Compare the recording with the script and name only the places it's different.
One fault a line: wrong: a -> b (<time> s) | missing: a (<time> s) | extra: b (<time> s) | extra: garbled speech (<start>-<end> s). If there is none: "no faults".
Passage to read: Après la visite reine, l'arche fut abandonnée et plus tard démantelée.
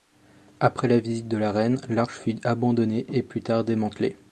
extra: de la (1.3 s)